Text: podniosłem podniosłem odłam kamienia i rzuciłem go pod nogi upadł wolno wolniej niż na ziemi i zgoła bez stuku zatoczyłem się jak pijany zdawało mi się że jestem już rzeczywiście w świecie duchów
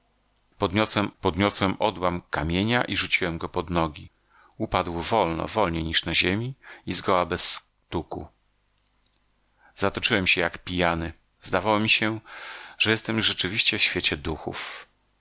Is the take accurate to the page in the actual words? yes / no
yes